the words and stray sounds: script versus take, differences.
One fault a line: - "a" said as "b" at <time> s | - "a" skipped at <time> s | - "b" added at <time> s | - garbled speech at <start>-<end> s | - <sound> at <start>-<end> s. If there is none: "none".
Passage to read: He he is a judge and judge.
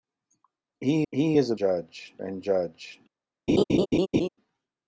- laugh at 3.5-4.3 s